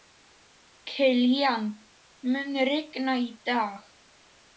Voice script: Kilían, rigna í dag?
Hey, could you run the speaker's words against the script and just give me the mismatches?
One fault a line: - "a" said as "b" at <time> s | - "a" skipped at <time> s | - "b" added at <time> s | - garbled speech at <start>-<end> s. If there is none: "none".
- "mun" added at 2.3 s